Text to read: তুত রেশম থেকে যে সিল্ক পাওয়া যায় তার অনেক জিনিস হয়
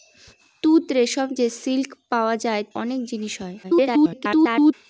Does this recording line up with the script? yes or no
no